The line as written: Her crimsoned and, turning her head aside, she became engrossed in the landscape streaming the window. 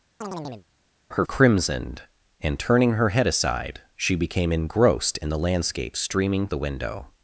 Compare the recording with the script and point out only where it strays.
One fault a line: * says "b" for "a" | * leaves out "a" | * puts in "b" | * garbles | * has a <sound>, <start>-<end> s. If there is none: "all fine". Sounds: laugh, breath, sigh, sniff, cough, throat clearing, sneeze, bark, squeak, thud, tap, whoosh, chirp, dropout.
* has a chirp, 0.2-0.7 s